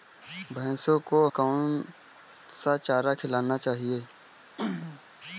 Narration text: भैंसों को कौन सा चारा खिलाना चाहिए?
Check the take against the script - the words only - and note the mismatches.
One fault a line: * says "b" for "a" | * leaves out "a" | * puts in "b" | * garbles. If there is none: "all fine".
all fine